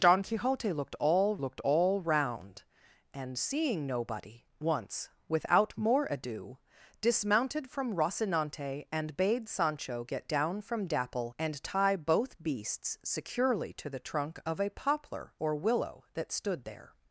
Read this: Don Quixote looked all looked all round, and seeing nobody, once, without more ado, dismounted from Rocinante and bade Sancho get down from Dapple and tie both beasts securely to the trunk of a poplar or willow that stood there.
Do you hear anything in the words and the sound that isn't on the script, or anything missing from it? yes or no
no